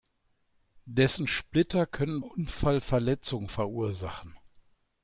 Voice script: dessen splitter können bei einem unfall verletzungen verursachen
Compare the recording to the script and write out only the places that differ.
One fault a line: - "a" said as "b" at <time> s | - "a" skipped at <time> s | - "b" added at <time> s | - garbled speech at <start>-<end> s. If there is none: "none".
- "bei einem" skipped at 2.2 s